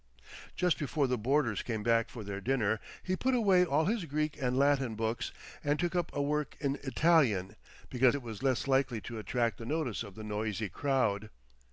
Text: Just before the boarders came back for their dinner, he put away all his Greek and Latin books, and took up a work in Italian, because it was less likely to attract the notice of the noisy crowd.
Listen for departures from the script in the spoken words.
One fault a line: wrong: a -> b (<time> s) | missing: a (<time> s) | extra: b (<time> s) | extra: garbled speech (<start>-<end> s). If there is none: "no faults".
no faults